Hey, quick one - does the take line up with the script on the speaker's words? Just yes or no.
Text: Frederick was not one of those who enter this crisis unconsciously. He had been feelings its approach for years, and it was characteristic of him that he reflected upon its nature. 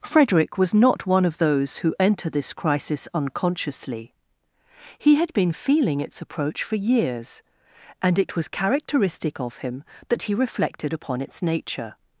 no